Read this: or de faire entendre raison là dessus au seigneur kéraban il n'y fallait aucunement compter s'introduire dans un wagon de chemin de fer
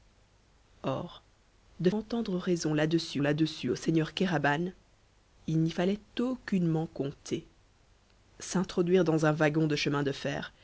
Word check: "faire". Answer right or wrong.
wrong